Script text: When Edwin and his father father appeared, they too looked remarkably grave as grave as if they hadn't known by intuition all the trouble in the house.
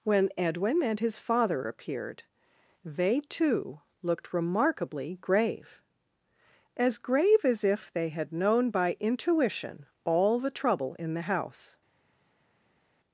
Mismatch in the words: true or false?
true